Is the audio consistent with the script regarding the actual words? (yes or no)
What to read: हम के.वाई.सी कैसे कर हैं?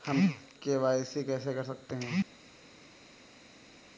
no